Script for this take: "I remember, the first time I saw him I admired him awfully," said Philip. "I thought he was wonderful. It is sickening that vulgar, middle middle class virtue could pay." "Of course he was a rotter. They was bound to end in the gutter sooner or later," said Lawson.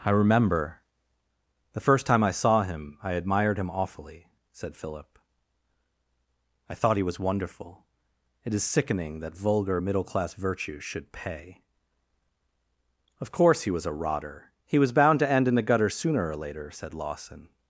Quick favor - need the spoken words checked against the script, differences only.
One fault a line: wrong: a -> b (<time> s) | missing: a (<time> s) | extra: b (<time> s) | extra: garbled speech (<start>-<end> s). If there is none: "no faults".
missing: middle (10.0 s)
wrong: could -> should (10.8 s)
wrong: They -> He (14.7 s)